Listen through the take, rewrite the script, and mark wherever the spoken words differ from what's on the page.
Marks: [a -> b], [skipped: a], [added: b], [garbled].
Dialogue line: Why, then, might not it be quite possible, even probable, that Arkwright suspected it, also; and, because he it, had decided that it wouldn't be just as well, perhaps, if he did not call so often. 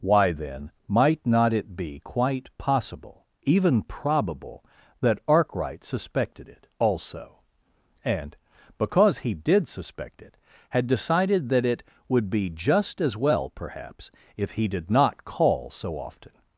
Why, then, might not it be quite possible, even probable, that Arkwright suspected it, also; and, because he [added: did suspect] it, had decided that it [wouldn't -> would] be just as well, perhaps, if he did not call so often.